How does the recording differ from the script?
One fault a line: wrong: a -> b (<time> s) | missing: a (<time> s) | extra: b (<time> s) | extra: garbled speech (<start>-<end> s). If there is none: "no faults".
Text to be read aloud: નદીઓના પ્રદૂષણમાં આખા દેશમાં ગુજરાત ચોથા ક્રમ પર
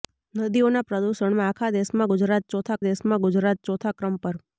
extra: દેશમાં ગુજરાત ચોથા (2.9 s)